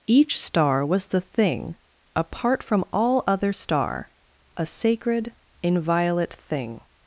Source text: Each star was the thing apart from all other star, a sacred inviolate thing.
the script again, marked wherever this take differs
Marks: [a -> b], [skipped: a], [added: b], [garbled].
Each star was the thing apart from all other star, a sacred inviolate thing.